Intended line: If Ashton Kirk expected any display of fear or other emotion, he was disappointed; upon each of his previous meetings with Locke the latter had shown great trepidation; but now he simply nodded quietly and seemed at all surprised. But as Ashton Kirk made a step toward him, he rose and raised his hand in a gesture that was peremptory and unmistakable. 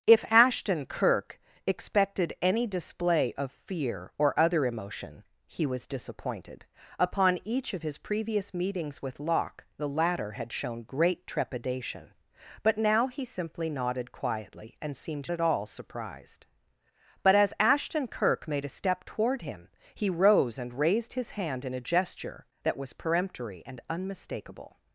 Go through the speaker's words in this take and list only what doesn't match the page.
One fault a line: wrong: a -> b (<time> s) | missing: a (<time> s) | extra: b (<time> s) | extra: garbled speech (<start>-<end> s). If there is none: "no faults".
no faults